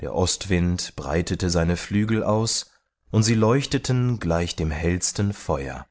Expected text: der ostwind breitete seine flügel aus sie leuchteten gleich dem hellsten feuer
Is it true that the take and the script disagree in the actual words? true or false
true